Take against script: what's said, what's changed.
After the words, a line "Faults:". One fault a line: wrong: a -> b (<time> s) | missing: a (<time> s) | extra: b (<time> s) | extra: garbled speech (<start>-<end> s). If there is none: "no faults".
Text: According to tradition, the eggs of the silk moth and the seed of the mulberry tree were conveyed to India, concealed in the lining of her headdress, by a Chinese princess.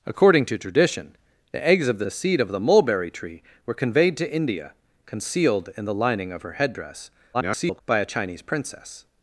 According to tradition, the eggs of the the seed of the mulberry tree were conveyed to India, concealed in the lining of her headdress, [garbled] by a Chinese princess.
Faults:
missing: silk moth and (2.1 s)
extra: garbled speech (7.3-7.8 s)